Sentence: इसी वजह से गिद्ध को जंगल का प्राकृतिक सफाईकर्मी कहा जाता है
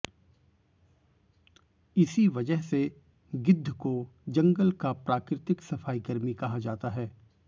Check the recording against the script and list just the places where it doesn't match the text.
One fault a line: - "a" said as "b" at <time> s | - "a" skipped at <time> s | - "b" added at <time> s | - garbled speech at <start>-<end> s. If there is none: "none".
none